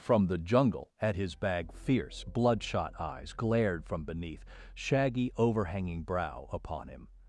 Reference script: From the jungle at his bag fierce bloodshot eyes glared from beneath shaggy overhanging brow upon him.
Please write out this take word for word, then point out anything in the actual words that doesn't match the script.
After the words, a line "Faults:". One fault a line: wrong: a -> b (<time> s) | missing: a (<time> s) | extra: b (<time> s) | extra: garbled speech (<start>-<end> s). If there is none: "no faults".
From the jungle at his bag fierce bloodshot eyes glared from beneath shaggy overhanging brow upon him.
Faults:
no faults